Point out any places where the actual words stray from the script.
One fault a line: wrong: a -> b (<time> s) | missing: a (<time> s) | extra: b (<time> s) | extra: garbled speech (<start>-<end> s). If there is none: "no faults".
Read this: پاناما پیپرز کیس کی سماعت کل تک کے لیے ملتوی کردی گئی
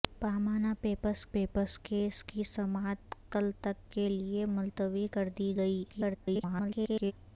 extra: پیپرز (1.3 s)
extra: garbled speech (5.9-7.1 s)